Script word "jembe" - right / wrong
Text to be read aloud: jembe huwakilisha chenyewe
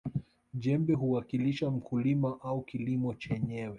right